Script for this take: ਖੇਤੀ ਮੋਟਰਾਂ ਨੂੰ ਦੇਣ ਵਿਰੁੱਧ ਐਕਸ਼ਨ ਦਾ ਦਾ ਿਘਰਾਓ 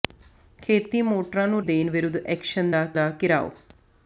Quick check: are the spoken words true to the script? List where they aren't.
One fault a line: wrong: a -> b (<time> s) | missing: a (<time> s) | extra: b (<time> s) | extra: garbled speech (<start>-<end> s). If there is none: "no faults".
no faults